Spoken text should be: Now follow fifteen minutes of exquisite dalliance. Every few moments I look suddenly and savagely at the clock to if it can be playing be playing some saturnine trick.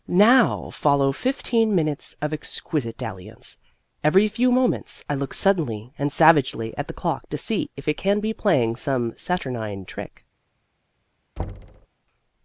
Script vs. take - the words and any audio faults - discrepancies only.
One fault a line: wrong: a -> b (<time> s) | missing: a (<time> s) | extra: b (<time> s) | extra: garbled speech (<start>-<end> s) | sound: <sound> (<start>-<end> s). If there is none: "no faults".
extra: see (7.4 s)
missing: be playing (8.8 s)
sound: thud (11.4-11.9 s)